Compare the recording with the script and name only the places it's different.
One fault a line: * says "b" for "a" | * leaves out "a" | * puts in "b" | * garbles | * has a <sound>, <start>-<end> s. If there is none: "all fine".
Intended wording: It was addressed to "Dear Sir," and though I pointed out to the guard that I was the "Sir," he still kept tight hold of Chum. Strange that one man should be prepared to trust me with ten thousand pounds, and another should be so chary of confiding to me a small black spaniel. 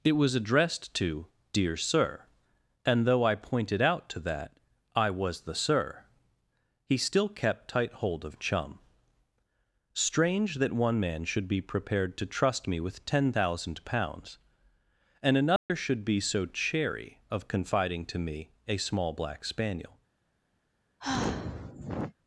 * leaves out "the guard"
* has a dropout, 15.6-15.7 s
* has a sigh, 21.0-22.1 s